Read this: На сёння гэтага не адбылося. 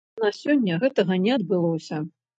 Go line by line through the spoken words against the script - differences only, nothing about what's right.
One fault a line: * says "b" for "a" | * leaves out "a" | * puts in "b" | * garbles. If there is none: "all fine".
all fine